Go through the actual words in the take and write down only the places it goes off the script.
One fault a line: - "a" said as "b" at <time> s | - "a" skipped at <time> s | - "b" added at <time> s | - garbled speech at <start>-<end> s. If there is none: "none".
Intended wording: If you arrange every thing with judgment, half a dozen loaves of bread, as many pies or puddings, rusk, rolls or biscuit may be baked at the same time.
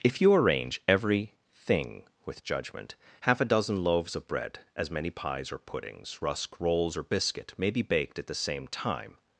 none